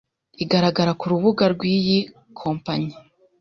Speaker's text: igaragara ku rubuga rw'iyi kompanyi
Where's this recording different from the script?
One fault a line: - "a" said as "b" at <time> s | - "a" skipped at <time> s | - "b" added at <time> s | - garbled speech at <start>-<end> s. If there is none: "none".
none